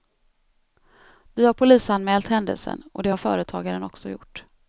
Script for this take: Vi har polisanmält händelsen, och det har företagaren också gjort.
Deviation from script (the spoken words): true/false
false